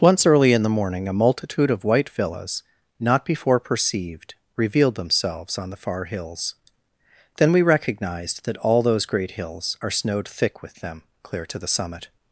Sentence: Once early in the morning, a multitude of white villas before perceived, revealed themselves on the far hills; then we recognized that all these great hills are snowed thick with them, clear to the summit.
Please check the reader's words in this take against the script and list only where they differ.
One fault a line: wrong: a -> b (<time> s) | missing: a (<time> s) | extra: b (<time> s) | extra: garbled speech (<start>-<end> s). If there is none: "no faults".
extra: not (3.0 s)
wrong: these -> those (8.8 s)